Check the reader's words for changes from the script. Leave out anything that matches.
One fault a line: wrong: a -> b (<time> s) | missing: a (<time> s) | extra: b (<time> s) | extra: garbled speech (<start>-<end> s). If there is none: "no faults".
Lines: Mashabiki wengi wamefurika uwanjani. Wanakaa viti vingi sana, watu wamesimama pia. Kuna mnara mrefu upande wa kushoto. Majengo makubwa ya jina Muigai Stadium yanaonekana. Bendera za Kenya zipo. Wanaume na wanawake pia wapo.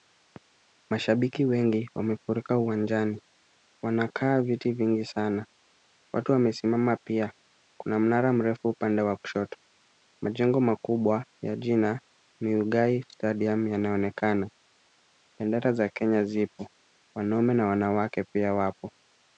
no faults